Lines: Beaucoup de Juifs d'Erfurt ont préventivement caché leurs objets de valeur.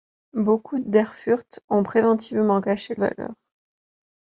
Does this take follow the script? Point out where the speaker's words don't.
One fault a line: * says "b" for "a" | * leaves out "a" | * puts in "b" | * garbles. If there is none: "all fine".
* leaves out "de Juifs"
* leaves out "leurs objets de"